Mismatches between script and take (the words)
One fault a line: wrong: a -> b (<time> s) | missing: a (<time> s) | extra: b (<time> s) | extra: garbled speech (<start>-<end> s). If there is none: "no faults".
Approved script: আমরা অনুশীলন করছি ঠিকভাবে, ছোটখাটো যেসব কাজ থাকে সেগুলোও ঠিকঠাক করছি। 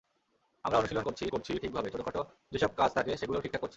extra: করছি (1.3 s)